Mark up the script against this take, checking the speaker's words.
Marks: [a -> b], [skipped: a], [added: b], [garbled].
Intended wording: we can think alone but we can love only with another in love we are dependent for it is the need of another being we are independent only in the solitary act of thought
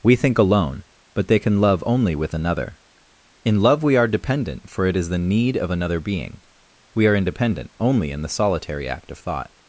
we [skipped: can] think alone but [we -> they] can love only with another in love we are dependent for it is the need of another being we are independent only in the solitary act of thought